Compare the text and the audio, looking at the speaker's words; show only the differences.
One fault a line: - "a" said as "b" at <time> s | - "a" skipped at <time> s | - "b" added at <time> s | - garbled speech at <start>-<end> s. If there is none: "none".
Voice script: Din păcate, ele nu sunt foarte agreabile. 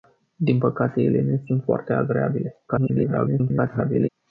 - garbled speech at 2.7-4.1 s